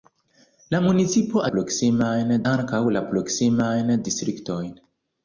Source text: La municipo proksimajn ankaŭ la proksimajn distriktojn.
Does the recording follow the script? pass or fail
pass